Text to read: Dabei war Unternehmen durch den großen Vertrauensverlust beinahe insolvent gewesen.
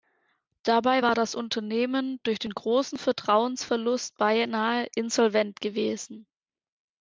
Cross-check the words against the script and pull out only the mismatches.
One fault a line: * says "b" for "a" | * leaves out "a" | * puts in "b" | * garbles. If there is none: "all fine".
* puts in "das"